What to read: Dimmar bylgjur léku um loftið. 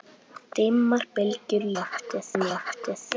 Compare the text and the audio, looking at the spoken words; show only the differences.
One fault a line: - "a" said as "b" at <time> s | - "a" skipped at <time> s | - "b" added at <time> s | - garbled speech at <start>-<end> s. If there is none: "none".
- "léku" said as "loftið" at 1.8 s